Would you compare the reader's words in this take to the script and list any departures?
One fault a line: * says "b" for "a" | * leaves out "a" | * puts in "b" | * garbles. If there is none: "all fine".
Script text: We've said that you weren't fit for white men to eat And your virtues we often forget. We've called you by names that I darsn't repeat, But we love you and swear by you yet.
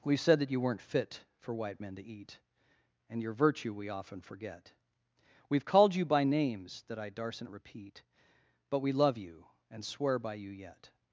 * says "virtue" for "virtues"